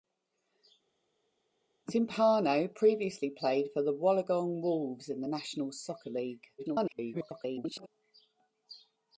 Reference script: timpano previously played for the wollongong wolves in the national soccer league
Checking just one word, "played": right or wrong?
right